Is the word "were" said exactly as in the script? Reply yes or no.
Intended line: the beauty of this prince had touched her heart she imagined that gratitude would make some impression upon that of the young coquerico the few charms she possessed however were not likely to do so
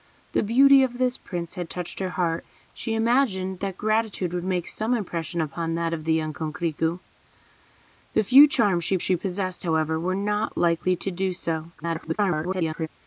yes